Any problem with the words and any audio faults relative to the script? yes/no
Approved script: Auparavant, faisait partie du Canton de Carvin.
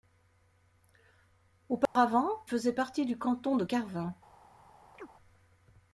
yes